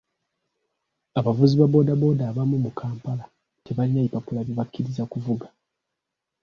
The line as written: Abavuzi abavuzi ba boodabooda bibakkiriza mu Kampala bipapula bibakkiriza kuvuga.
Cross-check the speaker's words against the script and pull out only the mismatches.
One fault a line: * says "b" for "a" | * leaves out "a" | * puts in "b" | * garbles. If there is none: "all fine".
* leaves out "abavuzi"
* says "abamu" for "bibakkiriza"
* puts in "tebalina"